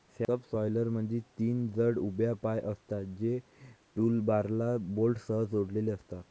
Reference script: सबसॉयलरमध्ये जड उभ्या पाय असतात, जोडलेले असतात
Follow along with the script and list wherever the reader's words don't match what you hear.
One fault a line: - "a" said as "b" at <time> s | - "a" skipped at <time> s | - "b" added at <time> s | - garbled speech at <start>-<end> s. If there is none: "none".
- "तीन" added at 1.4 s
- "जे टूलबारला बोल्टसह" added at 3.1 s